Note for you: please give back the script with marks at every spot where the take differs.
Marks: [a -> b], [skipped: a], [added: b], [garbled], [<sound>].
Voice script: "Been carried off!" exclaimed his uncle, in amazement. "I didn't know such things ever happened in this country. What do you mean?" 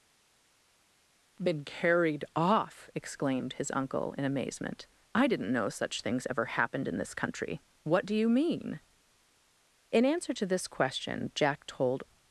"Been carried off!" exclaimed his uncle, in amazement. "I didn't know such things ever happened in this country. What do you mean?" [added: In answer to this question Jack told]